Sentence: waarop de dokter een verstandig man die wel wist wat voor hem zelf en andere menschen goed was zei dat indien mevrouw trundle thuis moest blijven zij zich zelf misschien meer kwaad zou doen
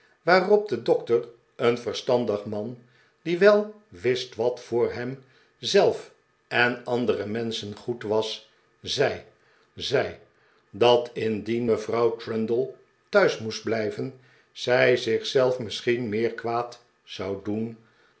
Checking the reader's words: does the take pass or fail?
fail